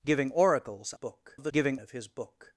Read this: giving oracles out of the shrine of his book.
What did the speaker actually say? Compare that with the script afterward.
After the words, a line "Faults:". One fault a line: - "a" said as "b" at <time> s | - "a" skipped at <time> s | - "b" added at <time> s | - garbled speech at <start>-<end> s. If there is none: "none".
giving oracles book of the giving of his book.
Faults:
- "out" said as "book" at 0.9 s
- "shrine" said as "giving" at 1.5 s